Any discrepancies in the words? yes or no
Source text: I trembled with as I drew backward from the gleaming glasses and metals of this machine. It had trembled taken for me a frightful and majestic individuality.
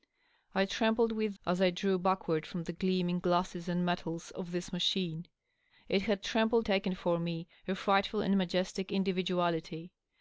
no